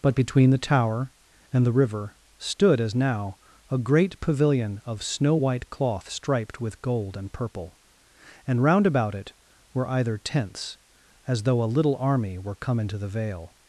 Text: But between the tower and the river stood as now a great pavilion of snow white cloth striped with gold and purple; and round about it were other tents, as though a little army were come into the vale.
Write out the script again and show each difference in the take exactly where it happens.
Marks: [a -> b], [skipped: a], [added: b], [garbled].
But between the tower and the river stood as now a great pavilion of snow white cloth striped with gold and purple; and round about it were [other -> either] tents, as though a little army were come into the vale.